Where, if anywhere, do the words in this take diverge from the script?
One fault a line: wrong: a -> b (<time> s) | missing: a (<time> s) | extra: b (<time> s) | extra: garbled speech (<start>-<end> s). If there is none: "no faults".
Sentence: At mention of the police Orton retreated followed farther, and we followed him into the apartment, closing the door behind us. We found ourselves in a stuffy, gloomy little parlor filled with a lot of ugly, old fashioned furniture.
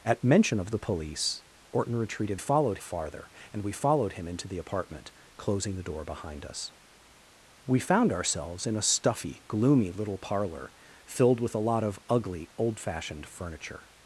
no faults